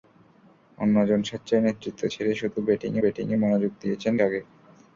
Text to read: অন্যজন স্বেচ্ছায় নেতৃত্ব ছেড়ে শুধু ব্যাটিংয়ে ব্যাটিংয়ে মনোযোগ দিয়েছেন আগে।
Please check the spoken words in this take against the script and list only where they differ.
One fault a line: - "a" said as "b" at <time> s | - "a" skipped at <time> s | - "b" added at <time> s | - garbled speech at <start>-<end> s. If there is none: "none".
none